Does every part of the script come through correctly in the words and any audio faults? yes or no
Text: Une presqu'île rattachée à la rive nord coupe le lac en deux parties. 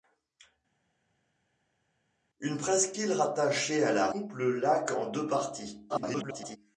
no